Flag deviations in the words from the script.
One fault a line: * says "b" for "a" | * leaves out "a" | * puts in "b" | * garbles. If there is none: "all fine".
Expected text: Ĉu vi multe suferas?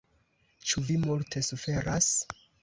all fine